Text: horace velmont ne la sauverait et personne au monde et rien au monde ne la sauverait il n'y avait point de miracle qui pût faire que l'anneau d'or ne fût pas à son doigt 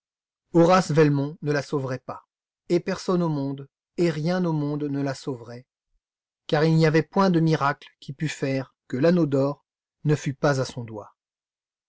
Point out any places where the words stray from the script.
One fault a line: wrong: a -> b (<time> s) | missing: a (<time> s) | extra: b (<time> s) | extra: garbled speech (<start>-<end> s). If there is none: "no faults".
extra: pas (2.0 s)
extra: car (6.5 s)